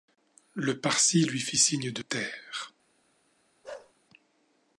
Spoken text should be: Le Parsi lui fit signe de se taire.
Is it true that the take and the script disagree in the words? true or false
true